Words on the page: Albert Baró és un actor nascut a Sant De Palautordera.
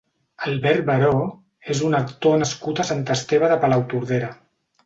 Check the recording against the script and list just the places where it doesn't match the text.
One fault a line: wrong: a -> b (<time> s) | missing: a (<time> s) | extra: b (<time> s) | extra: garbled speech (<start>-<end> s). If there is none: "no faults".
extra: Esteve (3.2 s)